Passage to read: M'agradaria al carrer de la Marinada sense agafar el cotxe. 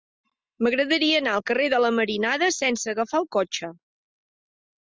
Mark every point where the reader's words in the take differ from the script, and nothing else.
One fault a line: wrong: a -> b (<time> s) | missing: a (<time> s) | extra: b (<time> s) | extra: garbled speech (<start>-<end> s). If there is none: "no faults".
extra: anar (1.2 s)